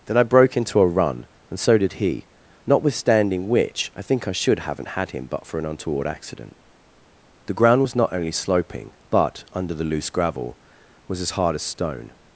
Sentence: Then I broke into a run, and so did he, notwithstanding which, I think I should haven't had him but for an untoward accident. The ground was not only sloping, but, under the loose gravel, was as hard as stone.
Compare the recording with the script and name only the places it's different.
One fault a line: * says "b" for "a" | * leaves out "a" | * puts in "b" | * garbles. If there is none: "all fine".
all fine